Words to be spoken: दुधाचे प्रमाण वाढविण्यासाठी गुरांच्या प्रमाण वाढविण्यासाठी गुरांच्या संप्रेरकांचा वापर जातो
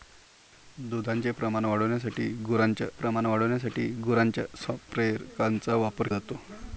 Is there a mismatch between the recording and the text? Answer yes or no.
no